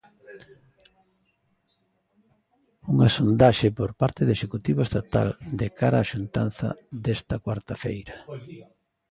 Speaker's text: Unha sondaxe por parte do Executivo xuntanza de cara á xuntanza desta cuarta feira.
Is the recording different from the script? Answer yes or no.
yes